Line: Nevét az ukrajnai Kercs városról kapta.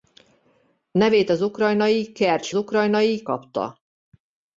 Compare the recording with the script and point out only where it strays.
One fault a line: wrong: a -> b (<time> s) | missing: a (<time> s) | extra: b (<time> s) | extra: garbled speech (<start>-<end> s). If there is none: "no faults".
wrong: városról -> ukrajnai (2.5 s)